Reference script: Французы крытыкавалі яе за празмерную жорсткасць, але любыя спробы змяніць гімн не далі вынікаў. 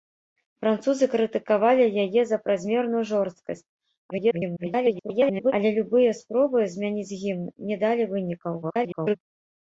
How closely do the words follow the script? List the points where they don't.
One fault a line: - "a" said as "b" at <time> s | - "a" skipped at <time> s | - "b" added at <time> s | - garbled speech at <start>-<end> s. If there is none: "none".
- garbled speech at 4.1-5.5 s
- garbled speech at 8.6-9.2 s